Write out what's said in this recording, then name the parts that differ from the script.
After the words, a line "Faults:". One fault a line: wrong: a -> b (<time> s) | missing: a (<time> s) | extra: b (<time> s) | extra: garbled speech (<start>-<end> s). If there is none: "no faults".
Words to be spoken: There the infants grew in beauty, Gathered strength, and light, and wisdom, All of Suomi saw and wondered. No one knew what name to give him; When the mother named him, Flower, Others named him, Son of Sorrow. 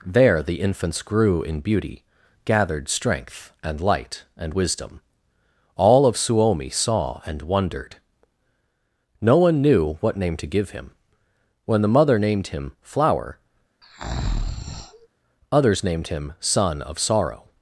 There the infants grew in beauty, Gathered strength, and light, and wisdom, All of Suomi saw and wondered. No one knew what name to give him; When the mother named him, Flower, Others named him, Son of Sorrow.
Faults:
no faults